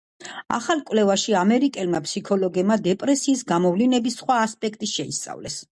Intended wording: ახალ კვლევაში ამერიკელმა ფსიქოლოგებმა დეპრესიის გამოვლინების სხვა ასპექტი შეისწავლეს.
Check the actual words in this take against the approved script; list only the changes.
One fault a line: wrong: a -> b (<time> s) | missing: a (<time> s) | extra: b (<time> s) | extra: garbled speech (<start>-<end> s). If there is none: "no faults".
no faults